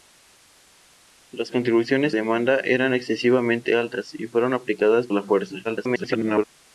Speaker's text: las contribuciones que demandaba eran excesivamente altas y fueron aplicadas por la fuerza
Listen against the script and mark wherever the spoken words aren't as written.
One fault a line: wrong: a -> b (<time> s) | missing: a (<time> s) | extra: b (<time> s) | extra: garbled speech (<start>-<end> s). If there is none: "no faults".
missing: que (2.2 s)
missing: por (5.1 s)
extra: garbled speech (5.6-6.4 s)